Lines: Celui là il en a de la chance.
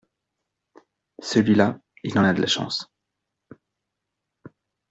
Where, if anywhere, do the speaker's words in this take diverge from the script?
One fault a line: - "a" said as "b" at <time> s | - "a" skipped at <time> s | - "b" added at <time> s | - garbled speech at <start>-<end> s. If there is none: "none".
none